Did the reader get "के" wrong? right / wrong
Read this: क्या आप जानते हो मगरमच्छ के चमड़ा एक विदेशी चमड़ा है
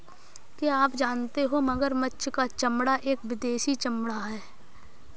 wrong